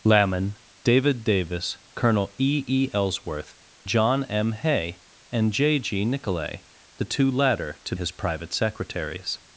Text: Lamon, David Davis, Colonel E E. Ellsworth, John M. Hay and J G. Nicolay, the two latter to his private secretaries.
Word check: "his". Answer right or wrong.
right